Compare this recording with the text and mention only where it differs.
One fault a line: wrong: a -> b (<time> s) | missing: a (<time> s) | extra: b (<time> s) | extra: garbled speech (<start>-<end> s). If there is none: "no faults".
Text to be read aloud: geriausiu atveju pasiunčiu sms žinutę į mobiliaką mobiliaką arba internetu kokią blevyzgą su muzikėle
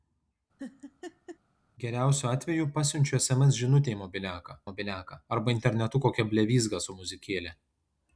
no faults